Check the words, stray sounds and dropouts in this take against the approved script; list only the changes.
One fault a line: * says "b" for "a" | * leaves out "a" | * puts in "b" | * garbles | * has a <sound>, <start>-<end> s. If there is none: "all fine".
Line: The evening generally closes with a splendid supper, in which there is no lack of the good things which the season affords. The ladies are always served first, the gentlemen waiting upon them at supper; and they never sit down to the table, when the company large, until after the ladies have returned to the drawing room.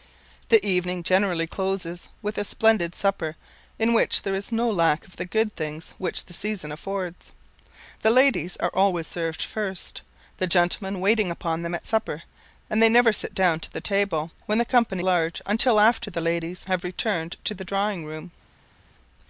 all fine